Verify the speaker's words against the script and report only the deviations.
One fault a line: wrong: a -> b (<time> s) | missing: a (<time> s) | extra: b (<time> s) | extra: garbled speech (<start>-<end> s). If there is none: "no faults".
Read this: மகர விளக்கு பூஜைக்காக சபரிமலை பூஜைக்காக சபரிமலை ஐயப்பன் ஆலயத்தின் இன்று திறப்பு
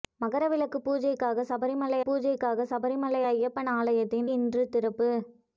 no faults